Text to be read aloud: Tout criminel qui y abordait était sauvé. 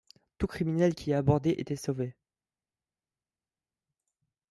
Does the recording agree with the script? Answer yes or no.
yes